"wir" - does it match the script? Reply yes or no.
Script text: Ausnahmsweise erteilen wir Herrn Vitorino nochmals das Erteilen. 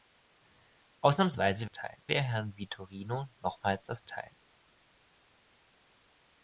yes